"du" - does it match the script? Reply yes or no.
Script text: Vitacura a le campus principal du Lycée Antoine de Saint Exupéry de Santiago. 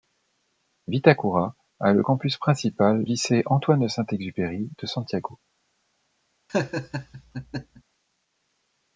no